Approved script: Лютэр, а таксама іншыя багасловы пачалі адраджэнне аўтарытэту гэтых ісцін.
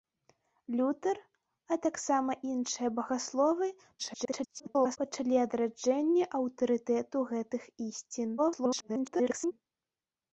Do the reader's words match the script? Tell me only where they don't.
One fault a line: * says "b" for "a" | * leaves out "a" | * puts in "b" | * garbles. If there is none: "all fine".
* garbles
* garbles